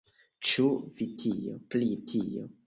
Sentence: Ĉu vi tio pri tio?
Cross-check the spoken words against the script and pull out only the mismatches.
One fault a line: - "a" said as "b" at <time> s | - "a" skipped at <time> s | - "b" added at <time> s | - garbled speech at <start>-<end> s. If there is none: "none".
none